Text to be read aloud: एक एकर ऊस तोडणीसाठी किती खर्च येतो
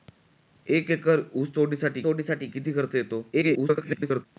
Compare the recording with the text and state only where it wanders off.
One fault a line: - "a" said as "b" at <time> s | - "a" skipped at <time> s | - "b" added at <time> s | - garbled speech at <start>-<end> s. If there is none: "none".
- "तोडणीसाठी" added at 2.0 s
- garbled speech at 3.3-4.3 s